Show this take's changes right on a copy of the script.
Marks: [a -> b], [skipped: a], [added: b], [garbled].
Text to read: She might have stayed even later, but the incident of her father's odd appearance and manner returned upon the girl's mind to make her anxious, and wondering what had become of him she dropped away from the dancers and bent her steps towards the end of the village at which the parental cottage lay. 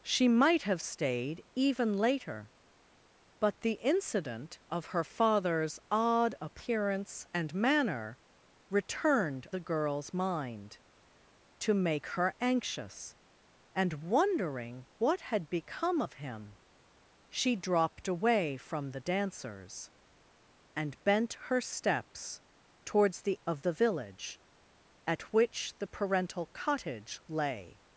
She might have stayed even later, but the incident of her father's odd appearance and manner returned [skipped: upon] the girl's mind to make her anxious, and wondering what had become of him she dropped away from the dancers and bent her steps towards the [skipped: end] of the village at which the parental cottage lay.